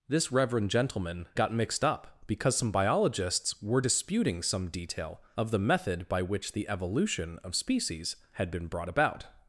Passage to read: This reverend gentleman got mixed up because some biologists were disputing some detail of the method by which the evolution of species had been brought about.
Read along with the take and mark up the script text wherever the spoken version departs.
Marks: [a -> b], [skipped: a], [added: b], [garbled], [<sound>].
This reverend gentleman got mixed up because some biologists were disputing some detail of the method by which the evolution of species had been brought about.